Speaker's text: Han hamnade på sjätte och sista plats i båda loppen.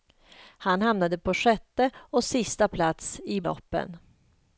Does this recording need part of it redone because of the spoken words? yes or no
yes